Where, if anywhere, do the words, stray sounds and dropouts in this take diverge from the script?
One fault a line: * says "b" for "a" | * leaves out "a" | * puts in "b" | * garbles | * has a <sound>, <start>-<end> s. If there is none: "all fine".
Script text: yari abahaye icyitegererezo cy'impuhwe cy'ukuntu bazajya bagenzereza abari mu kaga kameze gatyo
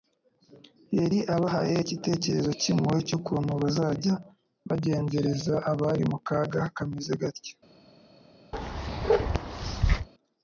* has a bark, 8.5-10.1 s